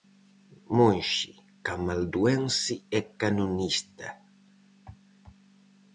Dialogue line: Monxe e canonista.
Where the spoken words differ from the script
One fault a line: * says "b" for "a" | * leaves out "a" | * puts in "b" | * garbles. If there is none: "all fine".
* puts in "camalduense"